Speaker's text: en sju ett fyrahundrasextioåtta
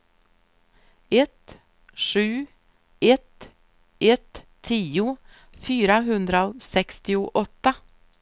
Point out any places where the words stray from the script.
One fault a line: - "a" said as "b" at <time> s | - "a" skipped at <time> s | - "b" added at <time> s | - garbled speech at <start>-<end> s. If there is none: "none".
- "en" said as "ett" at 1.1 s
- "ett tio" added at 4.0 s